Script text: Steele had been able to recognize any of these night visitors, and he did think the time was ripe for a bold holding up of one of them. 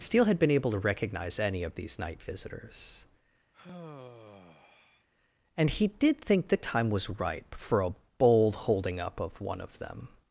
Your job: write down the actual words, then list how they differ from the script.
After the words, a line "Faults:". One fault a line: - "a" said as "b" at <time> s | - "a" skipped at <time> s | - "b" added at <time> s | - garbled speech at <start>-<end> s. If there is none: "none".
Steele had been able to recognize any of these night visitors, and he did think the time was ripe for a bold holding up of one of them.
Faults:
none